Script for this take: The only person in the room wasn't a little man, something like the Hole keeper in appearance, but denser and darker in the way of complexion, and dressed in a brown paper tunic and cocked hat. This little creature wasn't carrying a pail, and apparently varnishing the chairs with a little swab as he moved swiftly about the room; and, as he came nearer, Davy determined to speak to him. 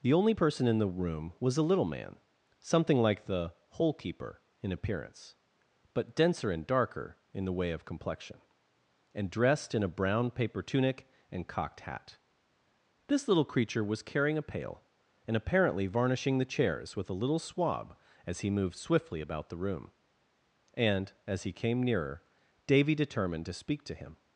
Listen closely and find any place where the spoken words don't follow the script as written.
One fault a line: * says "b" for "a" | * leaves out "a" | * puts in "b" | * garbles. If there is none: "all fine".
* says "was" for "wasn't"
* says "was" for "wasn't"